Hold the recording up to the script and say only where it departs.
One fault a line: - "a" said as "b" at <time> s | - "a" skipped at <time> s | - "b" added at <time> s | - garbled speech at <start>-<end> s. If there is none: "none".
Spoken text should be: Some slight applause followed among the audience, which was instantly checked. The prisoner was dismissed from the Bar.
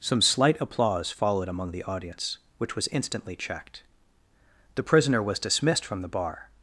none